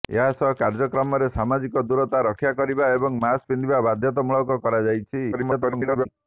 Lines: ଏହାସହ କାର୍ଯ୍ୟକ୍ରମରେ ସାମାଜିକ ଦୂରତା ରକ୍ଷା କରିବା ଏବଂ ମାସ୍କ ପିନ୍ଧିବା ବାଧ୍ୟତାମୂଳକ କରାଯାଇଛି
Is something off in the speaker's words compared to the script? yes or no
yes